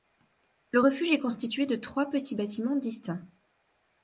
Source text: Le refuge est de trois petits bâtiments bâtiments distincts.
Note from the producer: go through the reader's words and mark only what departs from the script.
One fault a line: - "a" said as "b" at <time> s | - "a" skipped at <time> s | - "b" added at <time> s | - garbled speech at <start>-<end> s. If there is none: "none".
- "constitué" added at 1.2 s
- "bâtiments" skipped at 2.8 s